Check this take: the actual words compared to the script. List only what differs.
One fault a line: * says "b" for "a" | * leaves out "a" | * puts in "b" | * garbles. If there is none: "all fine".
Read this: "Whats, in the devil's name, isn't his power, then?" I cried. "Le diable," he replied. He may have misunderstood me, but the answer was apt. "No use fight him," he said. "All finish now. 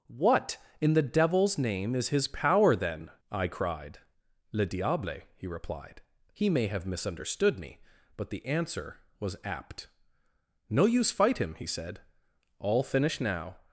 * says "What" for "Whats"
* says "is" for "isn't"